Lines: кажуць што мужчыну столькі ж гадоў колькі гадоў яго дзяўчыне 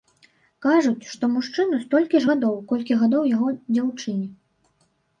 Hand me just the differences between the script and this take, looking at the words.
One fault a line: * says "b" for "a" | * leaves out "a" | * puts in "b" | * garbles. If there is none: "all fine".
all fine